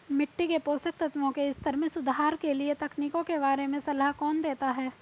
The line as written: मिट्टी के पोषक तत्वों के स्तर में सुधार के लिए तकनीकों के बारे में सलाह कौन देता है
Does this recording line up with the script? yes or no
yes